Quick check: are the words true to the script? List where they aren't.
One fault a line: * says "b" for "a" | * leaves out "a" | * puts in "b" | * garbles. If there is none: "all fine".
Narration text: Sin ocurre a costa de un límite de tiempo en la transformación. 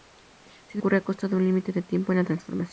all fine